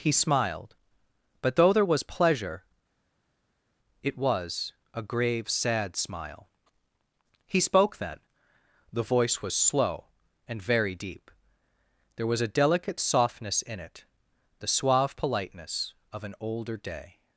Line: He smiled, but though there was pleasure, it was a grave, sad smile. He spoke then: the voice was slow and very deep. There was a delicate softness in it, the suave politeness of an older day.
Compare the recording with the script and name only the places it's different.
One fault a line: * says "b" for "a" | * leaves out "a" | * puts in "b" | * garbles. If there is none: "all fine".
all fine